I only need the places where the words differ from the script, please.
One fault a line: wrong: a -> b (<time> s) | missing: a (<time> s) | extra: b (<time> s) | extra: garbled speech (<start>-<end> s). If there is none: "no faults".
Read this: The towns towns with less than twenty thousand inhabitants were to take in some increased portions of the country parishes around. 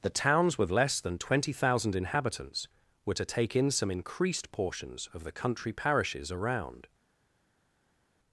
missing: towns (0.6 s)